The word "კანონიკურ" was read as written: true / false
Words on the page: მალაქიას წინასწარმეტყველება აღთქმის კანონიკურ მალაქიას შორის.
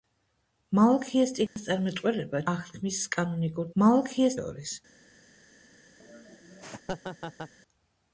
true